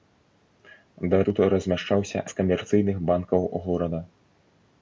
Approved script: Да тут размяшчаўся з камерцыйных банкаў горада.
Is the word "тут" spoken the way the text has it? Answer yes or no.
yes